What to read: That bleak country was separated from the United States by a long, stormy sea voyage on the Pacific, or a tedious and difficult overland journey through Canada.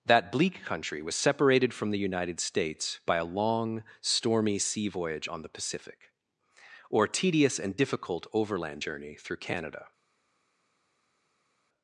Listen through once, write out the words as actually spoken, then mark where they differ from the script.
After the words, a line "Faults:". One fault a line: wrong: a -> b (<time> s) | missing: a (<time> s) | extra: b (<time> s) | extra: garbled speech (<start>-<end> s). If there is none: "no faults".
That bleak country was separated from the United States by a long, stormy sea voyage on the Pacific, or tedious and difficult overland journey through Canada.
Faults:
missing: a (7.1 s)